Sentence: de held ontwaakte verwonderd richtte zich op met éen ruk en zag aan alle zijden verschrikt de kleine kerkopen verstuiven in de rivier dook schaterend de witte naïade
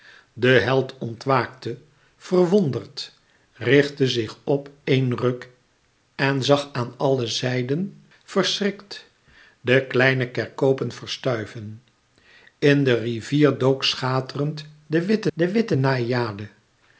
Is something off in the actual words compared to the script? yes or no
yes